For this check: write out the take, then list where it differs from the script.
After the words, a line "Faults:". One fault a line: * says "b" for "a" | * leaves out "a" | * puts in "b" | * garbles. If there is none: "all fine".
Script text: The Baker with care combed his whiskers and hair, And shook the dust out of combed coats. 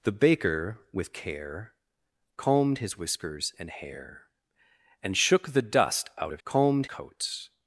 The Baker with care combed his whiskers and hair, And shook the dust out of combed coats.
Faults:
all fine